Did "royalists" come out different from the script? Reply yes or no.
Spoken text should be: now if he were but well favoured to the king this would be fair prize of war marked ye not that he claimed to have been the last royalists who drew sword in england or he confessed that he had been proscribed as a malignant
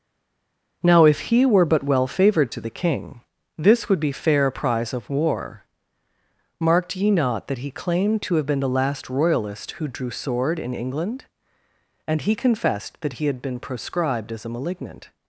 yes